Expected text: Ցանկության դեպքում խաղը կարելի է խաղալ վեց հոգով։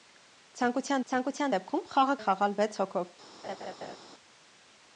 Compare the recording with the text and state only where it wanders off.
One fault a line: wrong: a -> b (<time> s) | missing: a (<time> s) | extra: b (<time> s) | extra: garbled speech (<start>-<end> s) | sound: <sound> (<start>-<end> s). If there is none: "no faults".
extra: ցանկության (1.1 s)
missing: կարելի (2.2 s)
sound: laugh (3.4-4.0 s)